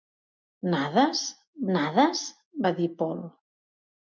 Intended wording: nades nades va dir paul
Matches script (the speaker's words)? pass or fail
pass